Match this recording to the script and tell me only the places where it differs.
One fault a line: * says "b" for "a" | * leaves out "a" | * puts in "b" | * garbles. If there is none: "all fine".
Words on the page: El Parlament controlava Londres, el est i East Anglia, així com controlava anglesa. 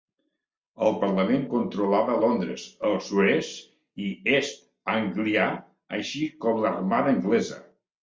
* puts in "sud"
* says "l'armada" for "controlava"